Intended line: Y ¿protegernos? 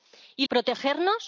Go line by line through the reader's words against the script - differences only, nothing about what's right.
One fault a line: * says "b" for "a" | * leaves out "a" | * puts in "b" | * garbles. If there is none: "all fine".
all fine